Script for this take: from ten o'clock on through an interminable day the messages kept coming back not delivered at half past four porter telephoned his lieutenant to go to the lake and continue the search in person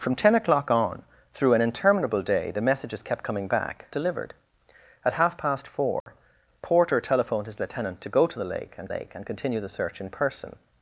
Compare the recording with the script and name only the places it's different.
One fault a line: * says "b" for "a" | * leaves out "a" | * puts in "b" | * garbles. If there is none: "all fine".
* leaves out "not"
* puts in "lake and"